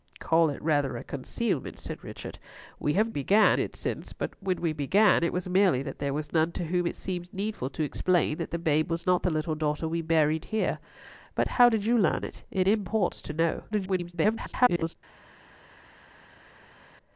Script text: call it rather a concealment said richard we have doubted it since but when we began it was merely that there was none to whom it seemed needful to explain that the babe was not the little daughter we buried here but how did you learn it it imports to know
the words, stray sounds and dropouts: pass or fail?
fail